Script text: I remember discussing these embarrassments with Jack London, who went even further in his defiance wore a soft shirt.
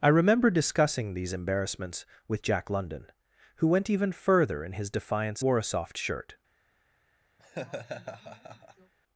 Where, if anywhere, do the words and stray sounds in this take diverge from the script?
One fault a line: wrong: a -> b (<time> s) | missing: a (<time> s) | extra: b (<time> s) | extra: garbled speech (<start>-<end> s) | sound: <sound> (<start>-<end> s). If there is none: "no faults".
sound: laugh (7.4-8.9 s)